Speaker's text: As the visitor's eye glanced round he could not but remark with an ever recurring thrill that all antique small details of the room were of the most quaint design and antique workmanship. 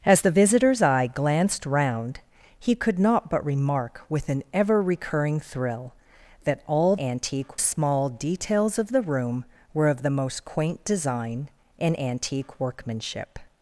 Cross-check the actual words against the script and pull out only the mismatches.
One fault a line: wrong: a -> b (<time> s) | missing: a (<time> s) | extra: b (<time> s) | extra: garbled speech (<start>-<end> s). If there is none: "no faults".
no faults